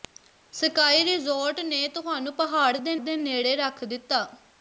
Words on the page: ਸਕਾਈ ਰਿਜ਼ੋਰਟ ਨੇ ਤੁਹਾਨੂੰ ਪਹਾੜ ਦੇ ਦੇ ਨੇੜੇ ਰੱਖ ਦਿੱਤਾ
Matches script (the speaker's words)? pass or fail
pass